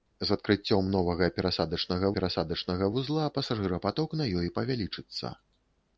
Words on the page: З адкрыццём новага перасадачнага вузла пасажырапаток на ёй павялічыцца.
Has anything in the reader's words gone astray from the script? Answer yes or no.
yes